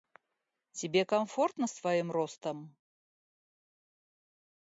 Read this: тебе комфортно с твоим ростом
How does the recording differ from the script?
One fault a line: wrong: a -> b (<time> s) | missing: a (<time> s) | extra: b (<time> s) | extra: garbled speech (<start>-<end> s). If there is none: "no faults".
no faults